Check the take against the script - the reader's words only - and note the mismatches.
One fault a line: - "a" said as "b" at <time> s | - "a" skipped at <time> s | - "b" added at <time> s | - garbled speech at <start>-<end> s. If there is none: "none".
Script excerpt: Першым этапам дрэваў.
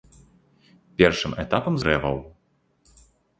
none